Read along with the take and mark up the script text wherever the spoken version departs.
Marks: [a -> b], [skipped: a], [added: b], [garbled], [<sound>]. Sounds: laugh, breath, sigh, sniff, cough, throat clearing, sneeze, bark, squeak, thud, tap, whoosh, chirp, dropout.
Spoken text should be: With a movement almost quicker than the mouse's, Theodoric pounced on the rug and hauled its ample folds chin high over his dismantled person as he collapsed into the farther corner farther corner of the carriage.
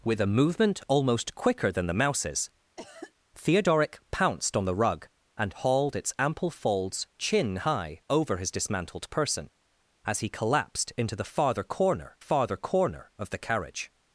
With a movement almost quicker than the mouse's, [cough] Theodoric pounced on the rug and hauled its ample folds chin high over his dismantled person as he collapsed into the farther corner farther corner of the carriage.